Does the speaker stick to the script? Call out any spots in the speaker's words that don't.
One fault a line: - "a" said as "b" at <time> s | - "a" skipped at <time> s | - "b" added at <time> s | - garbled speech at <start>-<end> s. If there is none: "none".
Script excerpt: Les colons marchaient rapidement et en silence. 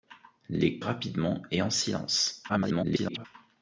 - "colons marchaient" skipped at 0.8 s
- garbled speech at 2.5-3.3 s